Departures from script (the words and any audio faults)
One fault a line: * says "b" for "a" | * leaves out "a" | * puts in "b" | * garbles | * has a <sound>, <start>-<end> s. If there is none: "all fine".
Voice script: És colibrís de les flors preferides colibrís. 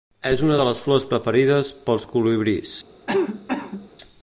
* says "una" for "colibrís"
* puts in "pels"
* has a cough, 3.1-3.9 s